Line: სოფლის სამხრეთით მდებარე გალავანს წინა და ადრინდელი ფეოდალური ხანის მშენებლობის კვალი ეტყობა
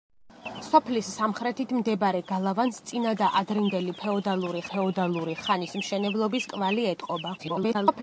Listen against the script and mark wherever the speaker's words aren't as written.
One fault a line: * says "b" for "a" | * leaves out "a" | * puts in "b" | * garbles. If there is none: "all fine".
* puts in "ფეოდალური"
* garbles